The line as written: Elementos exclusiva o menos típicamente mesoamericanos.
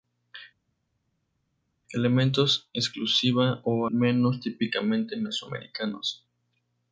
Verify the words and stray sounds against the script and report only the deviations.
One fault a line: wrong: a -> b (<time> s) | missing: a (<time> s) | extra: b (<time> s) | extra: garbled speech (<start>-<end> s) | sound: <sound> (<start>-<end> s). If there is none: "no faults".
no faults